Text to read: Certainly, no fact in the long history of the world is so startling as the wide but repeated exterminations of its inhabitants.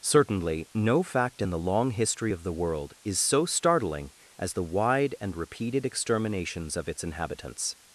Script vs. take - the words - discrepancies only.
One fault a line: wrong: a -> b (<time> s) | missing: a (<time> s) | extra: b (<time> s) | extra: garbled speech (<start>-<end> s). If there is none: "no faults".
wrong: but -> and (5.2 s)